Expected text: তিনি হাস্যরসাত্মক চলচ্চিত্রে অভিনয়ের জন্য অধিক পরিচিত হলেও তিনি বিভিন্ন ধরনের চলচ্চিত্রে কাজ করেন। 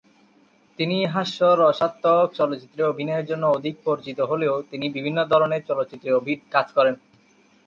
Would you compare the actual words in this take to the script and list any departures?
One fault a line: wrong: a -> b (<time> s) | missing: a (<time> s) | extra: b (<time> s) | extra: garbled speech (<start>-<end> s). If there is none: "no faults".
no faults